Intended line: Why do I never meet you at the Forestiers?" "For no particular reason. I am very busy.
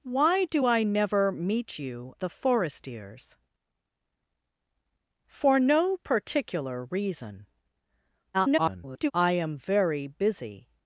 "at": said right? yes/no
no